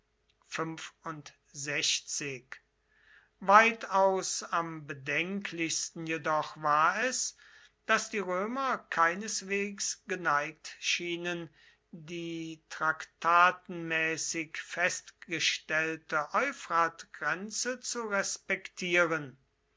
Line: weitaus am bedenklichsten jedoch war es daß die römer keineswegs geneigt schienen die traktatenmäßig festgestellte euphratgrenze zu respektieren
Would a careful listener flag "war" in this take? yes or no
no